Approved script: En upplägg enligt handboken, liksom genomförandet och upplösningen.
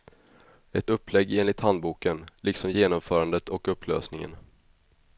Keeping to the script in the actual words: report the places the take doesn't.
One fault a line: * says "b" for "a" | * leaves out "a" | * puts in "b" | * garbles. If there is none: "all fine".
* says "Ett" for "En"